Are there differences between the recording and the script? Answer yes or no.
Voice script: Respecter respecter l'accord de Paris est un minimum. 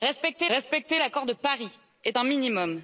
no